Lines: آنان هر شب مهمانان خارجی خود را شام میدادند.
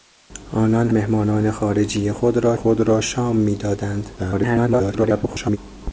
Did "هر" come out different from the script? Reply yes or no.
yes